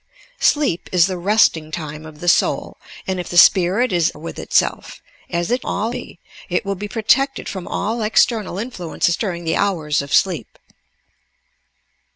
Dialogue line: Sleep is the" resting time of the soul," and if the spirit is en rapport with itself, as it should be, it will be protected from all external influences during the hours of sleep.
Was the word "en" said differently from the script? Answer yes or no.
yes